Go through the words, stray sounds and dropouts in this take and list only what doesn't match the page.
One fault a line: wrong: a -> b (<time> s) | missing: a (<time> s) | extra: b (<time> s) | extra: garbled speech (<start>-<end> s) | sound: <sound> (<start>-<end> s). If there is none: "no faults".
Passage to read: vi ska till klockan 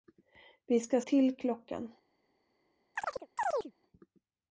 sound: chirp (3.0-3.7 s)